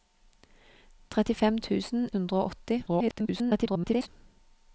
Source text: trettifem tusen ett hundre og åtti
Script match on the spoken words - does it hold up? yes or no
no